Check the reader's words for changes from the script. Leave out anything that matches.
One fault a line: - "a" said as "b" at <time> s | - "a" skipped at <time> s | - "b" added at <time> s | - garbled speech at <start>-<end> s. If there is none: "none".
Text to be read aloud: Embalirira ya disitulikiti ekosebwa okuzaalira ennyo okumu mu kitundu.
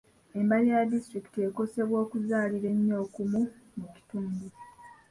none